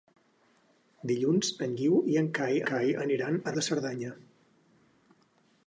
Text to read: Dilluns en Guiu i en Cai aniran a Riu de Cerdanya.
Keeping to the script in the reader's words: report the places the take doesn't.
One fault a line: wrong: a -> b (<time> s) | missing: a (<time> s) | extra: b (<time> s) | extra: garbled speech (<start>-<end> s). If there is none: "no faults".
extra: Cai (2.7 s)
missing: Riu (3.6 s)